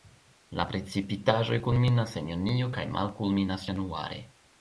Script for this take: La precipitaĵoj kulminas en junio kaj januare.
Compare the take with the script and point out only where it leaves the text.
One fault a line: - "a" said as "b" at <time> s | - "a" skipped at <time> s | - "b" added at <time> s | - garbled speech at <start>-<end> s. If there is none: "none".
- "malkulminas" added at 3.0 s